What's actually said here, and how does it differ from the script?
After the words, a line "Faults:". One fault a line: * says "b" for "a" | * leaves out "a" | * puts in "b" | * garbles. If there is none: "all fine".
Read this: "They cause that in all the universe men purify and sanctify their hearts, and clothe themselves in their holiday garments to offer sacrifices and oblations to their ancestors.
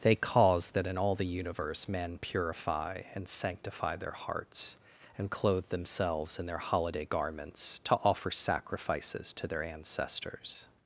"They cause that in all the universe men purify and sanctify their hearts, and clothe themselves in their holiday garments to offer sacrifices to their ancestors.
Faults:
* leaves out "and oblations"